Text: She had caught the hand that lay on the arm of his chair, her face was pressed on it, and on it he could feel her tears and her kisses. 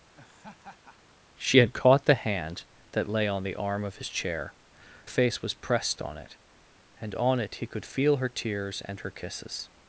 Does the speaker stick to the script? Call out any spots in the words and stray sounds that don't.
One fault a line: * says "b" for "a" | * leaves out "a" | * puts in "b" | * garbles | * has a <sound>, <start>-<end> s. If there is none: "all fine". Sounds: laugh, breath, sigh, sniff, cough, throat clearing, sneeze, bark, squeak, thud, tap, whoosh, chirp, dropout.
* has a laugh, 0.1-1.2 s
* leaves out "her"